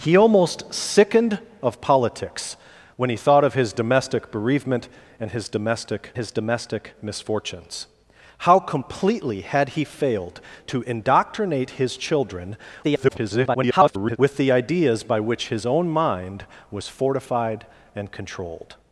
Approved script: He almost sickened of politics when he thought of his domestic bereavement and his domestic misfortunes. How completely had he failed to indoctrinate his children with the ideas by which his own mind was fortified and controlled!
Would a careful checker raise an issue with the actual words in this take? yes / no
yes